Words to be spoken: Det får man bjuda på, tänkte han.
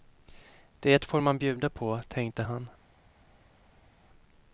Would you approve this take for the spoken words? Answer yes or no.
yes